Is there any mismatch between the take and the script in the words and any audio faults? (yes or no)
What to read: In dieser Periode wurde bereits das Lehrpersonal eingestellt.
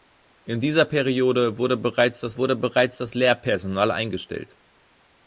yes